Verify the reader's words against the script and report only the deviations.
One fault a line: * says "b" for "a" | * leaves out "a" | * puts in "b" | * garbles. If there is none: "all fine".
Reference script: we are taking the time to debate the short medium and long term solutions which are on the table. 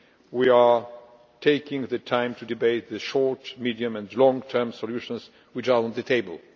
all fine